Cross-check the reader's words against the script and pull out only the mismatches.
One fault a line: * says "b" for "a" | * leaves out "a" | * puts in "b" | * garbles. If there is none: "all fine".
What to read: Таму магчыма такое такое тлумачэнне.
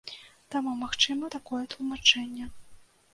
* leaves out "такое"